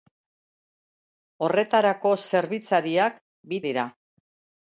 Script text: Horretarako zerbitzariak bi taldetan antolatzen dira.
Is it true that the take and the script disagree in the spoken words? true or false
true